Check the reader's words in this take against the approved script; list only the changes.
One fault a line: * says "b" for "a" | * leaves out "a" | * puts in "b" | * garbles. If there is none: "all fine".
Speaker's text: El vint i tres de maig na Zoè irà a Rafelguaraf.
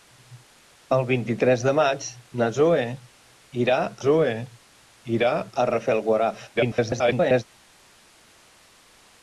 * puts in "Zoè irà"
* garbles